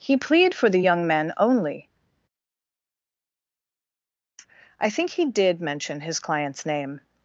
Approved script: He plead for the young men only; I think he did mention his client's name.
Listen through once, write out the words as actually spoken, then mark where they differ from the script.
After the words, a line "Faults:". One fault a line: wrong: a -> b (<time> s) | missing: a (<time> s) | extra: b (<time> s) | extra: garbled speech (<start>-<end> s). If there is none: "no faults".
He plead for the young men only; I think he did mention his client's name.
Faults:
no faults